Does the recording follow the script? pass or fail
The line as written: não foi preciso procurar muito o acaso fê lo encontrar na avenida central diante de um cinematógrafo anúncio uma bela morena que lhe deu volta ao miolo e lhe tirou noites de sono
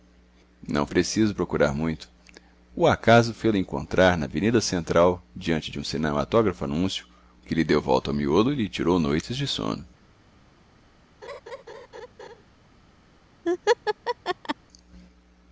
fail